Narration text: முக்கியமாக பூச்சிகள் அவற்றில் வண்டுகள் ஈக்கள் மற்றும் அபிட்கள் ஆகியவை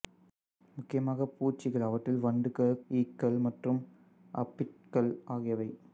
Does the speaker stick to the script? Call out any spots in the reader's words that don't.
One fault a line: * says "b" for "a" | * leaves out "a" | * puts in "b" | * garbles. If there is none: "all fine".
all fine